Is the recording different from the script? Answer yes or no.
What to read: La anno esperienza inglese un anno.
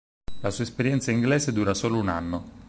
yes